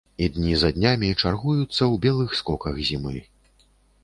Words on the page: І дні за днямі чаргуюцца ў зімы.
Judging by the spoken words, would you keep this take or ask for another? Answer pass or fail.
fail